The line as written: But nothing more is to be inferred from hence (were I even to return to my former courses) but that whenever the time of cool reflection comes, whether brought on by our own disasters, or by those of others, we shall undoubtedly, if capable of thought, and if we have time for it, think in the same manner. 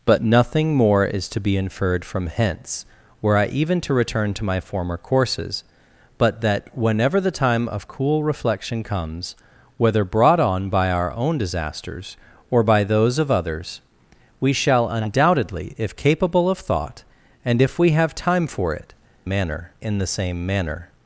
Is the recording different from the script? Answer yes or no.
yes